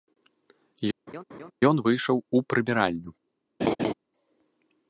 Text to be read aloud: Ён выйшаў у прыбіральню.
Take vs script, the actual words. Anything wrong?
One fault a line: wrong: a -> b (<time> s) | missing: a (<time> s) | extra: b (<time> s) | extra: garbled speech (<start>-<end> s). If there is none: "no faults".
no faults